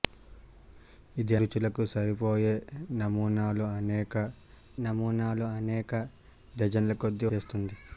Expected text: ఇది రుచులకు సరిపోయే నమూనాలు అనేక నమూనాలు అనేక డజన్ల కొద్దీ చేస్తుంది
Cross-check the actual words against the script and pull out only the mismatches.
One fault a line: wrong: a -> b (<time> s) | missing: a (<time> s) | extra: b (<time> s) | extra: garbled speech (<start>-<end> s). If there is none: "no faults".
no faults